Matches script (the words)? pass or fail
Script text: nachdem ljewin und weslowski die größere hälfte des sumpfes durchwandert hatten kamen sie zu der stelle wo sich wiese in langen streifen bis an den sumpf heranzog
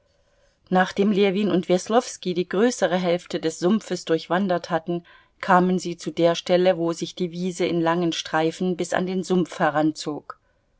fail